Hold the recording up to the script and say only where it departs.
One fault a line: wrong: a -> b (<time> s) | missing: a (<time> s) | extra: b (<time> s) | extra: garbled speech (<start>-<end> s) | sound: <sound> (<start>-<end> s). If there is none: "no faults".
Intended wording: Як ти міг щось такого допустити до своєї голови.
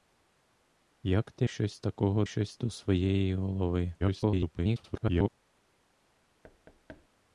missing: міг (1.5 s)
wrong: допустити -> щось (2.3 s)
extra: garbled speech (4.0-5.3 s)
sound: thud (6.4-7.1 s)